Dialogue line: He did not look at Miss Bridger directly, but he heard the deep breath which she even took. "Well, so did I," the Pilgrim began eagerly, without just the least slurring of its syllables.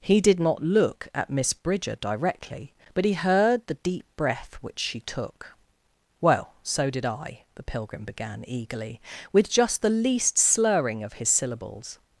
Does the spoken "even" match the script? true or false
false